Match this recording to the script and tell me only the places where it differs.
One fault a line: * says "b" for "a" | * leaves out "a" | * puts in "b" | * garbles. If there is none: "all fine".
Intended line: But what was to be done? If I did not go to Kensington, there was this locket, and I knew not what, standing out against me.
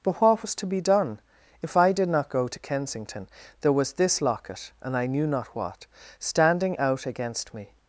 all fine